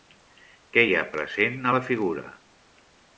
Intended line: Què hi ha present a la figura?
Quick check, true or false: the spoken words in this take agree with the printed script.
true